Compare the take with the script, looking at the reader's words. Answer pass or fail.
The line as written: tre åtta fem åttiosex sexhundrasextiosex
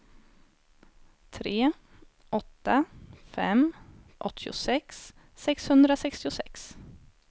pass